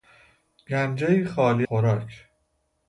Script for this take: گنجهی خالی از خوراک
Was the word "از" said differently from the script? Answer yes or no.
yes